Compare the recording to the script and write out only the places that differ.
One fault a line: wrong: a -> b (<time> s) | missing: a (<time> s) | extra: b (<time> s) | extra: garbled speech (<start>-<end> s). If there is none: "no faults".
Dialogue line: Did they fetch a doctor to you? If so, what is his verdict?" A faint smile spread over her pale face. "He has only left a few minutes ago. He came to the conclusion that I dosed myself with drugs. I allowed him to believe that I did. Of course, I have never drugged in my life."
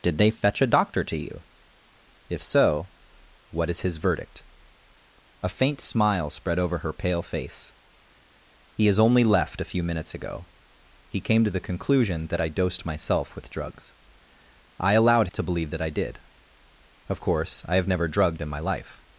missing: him (15.3 s)